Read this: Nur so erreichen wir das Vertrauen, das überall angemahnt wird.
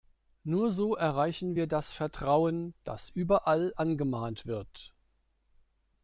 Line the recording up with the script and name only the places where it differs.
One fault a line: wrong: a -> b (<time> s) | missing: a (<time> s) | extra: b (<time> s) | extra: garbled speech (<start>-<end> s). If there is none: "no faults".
no faults